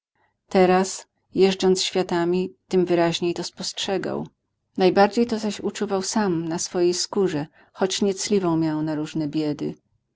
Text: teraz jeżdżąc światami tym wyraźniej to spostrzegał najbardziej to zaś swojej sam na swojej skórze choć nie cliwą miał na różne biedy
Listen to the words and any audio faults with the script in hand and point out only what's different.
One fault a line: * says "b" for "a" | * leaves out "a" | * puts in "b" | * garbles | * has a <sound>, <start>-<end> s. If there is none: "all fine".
* says "uczuwał" for "swojej"